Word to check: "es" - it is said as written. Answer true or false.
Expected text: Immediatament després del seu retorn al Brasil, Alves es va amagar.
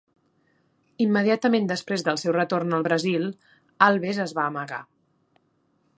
true